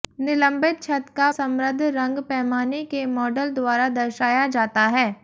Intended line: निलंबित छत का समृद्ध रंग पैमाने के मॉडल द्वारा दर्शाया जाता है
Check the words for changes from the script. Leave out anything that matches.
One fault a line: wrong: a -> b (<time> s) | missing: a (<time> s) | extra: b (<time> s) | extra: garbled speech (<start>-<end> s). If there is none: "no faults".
no faults